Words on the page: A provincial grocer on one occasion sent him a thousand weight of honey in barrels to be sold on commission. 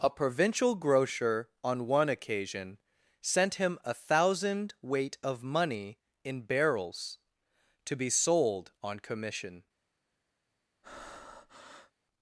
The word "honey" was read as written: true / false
false